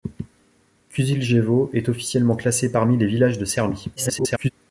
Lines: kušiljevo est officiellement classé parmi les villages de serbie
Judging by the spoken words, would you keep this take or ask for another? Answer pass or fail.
fail